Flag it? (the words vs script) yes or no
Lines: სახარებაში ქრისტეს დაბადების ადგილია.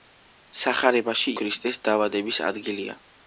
no